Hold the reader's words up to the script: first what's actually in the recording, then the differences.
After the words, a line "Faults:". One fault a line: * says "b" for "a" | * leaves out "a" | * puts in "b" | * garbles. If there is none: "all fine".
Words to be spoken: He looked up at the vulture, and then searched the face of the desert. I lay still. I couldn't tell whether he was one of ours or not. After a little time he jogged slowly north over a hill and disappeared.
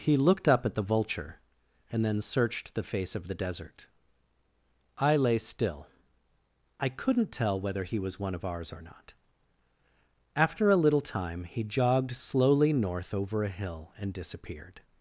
He looked up at the vulture, and then searched the face of the desert. I lay still. I couldn't tell whether he was one of ours or not. After a little time he jogged slowly north over a hill and disappeared.
Faults:
all fine